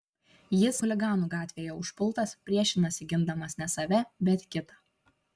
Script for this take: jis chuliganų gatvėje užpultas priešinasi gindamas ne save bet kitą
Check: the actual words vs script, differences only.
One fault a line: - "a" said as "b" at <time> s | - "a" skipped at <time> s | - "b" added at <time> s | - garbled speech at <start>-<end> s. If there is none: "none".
none